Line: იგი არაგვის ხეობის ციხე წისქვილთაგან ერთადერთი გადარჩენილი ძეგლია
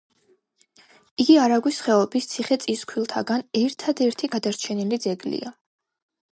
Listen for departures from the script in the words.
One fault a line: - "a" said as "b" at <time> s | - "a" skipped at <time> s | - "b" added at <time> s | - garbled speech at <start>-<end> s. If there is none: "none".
none